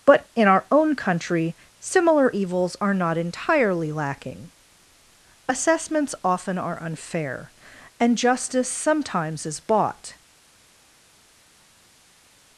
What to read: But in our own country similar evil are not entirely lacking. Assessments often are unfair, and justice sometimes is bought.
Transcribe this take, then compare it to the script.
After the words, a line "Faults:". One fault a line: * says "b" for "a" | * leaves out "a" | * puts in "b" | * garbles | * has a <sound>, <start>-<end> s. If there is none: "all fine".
But in our own country similar evils are not entirely lacking. Assessments often are unfair, and justice sometimes is bought.
Faults:
* says "evils" for "evil"